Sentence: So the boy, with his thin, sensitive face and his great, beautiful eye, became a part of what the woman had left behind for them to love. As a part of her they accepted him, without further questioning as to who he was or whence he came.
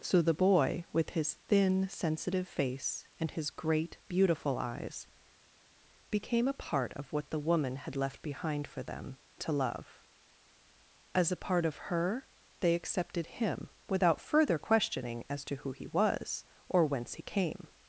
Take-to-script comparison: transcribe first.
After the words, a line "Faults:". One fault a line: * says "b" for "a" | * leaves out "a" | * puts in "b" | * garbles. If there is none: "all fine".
So the boy, with his thin, sensitive face and his great, beautiful eyes, became a part of what the woman had left behind for them to love. As a part of her they accepted him, without further questioning as to who he was or whence he came.
Faults:
* says "eyes" for "eye"